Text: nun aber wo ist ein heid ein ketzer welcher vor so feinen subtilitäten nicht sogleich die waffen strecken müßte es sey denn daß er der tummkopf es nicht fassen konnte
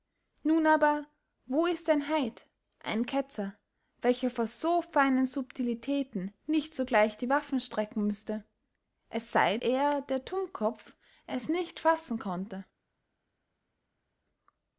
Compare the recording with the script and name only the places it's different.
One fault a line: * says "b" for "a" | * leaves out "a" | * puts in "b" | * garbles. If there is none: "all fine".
* leaves out "denn daß"